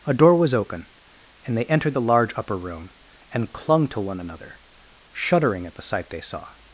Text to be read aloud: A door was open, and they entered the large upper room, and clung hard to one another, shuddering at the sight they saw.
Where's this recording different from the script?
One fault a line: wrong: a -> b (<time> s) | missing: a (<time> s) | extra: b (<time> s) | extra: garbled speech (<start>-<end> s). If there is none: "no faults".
missing: hard (3.9 s)